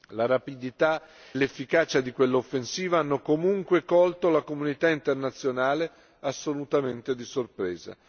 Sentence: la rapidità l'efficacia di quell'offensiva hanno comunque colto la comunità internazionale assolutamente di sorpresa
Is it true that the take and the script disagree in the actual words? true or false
false